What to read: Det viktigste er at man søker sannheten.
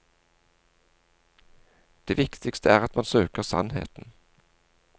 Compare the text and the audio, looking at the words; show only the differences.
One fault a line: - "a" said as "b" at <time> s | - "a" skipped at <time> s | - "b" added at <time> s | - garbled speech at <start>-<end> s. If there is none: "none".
none